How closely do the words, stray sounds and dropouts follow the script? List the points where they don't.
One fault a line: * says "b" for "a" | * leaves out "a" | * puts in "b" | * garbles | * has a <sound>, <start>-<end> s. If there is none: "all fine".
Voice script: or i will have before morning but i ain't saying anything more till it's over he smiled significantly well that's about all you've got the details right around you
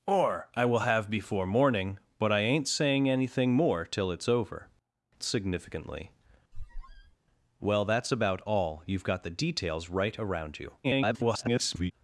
* leaves out "he smiled"
* has a squeak, 6.5-7.2 s
* garbles